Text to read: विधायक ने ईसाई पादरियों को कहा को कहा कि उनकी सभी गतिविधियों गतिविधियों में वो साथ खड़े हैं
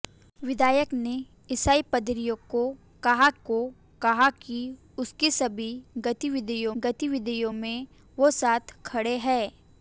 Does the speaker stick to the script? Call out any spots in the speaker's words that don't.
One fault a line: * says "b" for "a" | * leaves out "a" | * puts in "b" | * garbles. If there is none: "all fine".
all fine